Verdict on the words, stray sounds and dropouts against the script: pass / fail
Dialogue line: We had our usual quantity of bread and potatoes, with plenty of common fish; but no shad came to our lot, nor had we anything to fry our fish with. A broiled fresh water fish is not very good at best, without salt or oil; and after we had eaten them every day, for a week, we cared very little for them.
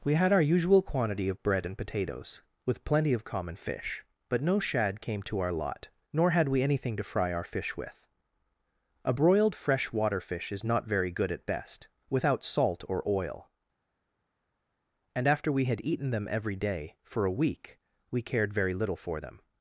pass